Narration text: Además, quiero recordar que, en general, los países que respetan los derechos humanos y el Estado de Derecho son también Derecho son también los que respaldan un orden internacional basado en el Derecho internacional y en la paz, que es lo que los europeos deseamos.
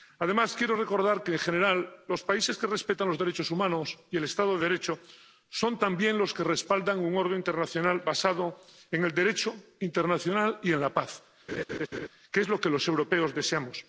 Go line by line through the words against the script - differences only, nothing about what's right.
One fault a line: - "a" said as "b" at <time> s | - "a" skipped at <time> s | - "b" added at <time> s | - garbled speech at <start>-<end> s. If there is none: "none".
- "Derecho son también" skipped at 6.2 s